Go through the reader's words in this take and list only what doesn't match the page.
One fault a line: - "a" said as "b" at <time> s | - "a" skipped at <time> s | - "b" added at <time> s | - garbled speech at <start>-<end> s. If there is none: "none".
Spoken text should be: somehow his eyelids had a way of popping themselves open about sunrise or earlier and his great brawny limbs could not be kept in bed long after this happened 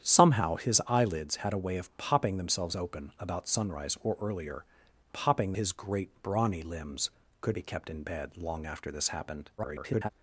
- "and" said as "popping" at 5.1 s
- "not" skipped at 7.6 s
- garbled speech at 9.6-10.1 s